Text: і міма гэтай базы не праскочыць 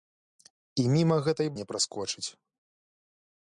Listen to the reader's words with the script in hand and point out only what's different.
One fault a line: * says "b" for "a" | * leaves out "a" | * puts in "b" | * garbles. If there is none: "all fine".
* leaves out "базы"